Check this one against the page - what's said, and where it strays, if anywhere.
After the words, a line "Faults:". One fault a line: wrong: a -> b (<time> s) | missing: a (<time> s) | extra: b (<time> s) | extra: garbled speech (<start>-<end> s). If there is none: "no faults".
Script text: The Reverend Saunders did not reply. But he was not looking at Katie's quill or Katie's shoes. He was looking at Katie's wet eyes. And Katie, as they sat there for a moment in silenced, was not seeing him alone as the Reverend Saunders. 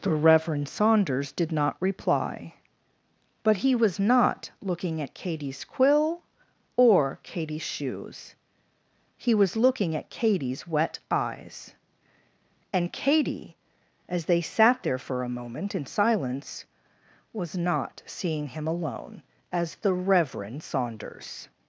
The Reverend Saunders did not reply. But he was not looking at Katie's quill or Katie's shoes. He was looking at Katie's wet eyes. And Katie, as they sat there for a moment in silence, was not seeing him alone as the Reverend Saunders.
Faults:
wrong: silenced -> silence (15.9 s)